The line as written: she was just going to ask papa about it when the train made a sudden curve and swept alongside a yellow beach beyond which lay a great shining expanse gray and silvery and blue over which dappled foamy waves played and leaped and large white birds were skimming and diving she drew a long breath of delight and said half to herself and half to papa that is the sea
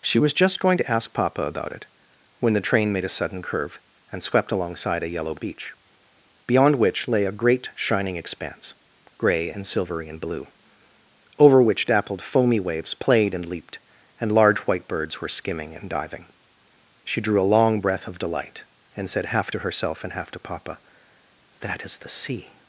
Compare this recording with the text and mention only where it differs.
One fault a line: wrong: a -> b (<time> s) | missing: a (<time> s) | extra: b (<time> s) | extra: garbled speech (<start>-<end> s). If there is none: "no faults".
no faults